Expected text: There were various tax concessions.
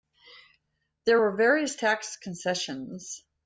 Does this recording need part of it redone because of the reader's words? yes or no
no